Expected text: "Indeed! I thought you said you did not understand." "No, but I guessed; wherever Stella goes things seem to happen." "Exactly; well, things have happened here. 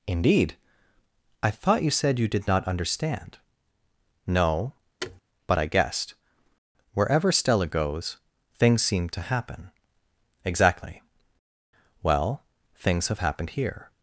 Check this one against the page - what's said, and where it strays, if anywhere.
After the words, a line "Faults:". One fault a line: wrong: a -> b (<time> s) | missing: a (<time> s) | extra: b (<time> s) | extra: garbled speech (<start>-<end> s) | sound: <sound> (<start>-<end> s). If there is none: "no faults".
"Indeed! I thought you said you did not understand." "No, but I guessed; wherever Stella goes things seem to happen." "Exactly; well, things have happened here.
Faults:
sound: thud (5.0-5.2 s)